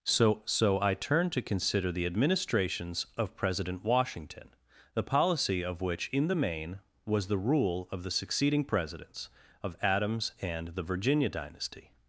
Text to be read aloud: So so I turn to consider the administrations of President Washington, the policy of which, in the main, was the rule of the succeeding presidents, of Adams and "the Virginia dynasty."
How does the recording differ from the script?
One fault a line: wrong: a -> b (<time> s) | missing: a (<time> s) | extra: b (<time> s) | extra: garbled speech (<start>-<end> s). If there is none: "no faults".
no faults